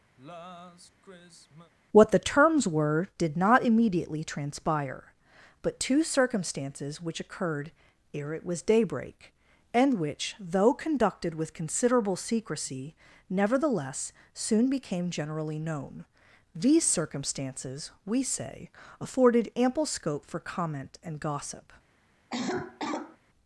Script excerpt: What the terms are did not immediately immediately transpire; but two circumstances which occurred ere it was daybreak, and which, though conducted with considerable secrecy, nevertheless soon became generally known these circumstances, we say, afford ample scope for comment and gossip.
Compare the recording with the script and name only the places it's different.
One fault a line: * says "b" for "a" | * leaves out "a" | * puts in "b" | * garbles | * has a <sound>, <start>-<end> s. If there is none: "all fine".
* has a sigh, 0.2-1.7 s
* says "were" for "are"
* leaves out "immediately"
* says "afforded" for "afford"
* has a cough, 22.3-23.2 s